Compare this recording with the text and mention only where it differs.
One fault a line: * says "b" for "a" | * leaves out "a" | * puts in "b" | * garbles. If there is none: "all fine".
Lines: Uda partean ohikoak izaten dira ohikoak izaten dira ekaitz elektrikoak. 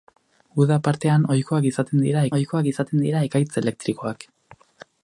all fine